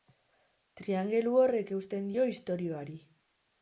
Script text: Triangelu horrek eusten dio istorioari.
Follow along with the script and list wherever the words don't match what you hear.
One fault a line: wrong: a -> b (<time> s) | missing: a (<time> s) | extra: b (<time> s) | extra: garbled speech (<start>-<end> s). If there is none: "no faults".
no faults